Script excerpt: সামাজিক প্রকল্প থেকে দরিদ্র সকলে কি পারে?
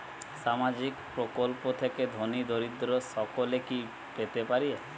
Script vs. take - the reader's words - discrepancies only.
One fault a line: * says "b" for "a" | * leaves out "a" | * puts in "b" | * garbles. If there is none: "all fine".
* puts in "ধনী"
* puts in "পেতে"